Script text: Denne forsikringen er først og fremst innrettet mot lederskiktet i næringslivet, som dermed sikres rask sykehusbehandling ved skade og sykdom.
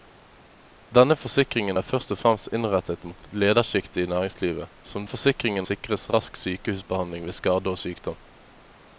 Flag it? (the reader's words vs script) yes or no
yes